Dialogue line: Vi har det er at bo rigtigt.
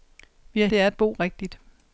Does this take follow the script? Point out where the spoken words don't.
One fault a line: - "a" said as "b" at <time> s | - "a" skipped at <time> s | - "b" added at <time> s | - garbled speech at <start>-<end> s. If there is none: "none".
none